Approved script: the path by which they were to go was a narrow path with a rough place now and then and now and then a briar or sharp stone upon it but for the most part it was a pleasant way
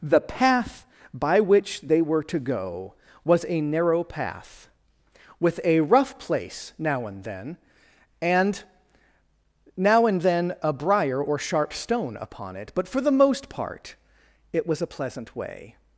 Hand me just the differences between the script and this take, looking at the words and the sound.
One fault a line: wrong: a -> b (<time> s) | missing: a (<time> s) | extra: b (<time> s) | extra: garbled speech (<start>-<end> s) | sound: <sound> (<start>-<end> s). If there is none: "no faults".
no faults